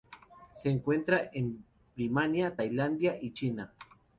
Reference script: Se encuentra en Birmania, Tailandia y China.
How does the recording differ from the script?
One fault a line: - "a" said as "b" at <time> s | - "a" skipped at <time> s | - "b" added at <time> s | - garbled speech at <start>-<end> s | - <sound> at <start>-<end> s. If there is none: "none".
none